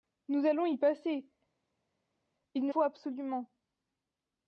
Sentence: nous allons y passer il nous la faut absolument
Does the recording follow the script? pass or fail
fail